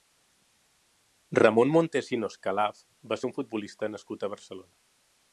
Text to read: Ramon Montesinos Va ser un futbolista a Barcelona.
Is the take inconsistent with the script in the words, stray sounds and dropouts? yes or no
yes